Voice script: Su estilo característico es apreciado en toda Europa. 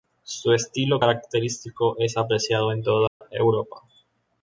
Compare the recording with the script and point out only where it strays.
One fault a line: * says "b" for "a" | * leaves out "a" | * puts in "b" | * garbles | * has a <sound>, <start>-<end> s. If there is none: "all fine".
* has a dropout, 3.1-3.2 s